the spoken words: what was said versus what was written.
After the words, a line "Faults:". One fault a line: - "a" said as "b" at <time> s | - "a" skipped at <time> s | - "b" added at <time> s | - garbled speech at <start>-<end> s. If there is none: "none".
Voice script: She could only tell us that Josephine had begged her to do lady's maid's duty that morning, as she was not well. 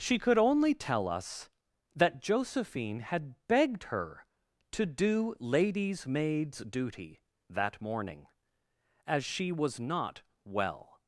She could only tell us that Josephine had begged her to do lady's maid's duty that morning, as she was not well.
Faults:
none